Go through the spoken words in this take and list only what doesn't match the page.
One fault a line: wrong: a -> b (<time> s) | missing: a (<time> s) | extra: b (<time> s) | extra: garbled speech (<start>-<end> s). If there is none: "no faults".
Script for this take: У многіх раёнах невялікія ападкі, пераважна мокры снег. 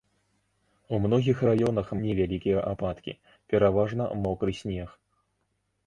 no faults